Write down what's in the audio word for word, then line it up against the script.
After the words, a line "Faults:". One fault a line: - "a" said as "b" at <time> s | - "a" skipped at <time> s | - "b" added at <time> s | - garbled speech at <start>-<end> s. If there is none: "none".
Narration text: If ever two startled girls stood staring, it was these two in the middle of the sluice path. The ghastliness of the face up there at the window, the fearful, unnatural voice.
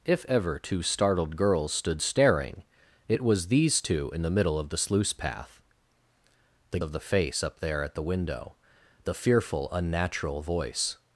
If ever two startled girls stood staring, it was these two in the middle of the sluice path. The of the face up there at the window, the fearful, unnatural voice.
Faults:
- "ghastliness" skipped at 6.8 s